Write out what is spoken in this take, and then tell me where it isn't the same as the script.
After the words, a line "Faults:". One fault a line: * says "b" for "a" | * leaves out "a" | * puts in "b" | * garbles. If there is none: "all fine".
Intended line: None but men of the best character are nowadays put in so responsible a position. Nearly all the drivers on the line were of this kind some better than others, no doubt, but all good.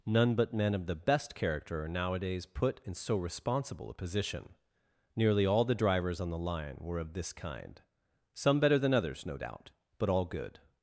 None but men of the best character are nowadays put in so responsible a position. Nearly all the drivers on the line were of this kind some better than others, no doubt, but all good.
Faults:
all fine